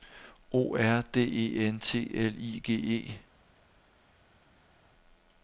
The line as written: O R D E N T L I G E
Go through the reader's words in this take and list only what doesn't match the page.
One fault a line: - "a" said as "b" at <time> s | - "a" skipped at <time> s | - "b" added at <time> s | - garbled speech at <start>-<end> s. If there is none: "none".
none